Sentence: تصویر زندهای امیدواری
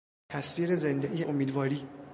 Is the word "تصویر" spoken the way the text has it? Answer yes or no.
yes